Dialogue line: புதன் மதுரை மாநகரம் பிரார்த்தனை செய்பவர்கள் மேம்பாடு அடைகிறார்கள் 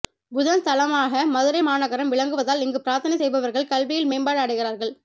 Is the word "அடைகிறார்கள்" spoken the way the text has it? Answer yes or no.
yes